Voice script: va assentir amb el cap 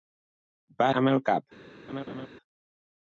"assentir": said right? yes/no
no